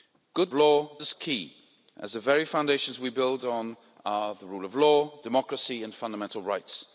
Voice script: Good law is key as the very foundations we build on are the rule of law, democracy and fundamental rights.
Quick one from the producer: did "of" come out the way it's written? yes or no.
yes